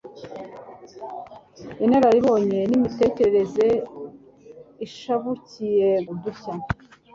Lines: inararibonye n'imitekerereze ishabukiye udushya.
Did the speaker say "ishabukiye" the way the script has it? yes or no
yes